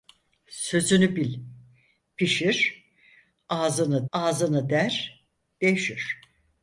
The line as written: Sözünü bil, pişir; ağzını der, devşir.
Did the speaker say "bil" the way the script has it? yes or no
yes